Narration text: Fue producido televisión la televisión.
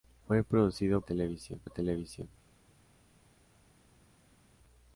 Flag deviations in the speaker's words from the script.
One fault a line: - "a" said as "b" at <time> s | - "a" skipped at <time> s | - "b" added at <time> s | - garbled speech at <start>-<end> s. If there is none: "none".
none